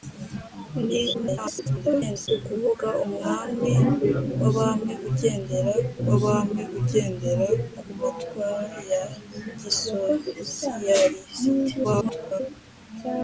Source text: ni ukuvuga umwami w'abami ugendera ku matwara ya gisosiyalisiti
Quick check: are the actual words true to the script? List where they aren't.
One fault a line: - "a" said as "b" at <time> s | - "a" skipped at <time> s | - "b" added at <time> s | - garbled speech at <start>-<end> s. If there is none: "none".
- garbled speech at 1.1-2.3 s
- "w'abami ugendera" added at 6.1 s
- garbled speech at 11.8-12.4 s